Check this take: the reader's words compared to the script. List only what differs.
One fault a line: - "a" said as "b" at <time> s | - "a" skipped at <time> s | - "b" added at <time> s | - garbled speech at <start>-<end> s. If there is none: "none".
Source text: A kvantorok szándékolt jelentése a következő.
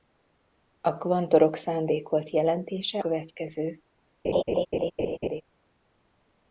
- "a" skipped at 3.0 s